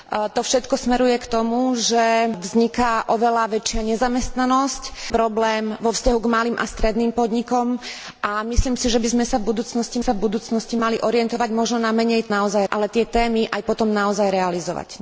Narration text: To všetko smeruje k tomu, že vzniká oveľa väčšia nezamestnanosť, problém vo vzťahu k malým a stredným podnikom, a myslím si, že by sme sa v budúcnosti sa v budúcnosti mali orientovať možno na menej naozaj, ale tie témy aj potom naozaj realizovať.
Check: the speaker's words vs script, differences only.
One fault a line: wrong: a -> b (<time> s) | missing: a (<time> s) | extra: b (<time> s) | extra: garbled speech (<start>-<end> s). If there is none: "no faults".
no faults